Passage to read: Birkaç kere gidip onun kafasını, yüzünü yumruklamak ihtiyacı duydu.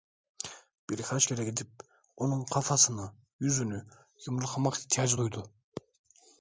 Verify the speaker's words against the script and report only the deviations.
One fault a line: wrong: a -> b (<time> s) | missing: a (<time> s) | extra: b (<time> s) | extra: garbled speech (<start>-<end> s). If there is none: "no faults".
no faults